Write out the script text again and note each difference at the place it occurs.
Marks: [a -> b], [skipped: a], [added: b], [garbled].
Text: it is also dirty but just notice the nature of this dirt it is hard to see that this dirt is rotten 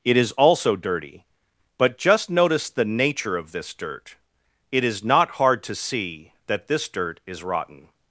it is also dirty but just notice the nature of this dirt it is [added: not] hard to see that this dirt is rotten